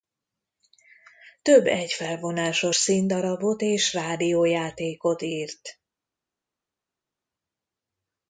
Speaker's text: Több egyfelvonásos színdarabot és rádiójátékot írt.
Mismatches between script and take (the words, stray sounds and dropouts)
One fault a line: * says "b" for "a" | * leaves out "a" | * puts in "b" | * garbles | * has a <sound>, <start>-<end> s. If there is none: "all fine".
all fine